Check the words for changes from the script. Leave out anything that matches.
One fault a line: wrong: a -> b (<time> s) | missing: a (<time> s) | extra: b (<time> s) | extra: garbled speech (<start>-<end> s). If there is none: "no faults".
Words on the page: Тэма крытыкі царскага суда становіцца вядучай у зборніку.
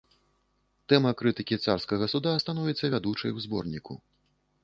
no faults